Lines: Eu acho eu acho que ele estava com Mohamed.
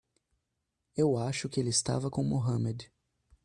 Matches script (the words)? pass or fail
fail